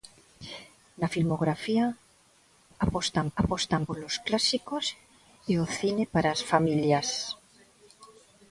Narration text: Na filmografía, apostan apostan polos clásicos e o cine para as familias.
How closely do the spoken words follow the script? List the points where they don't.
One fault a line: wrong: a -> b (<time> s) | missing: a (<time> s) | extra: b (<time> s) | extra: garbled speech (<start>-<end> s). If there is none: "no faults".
no faults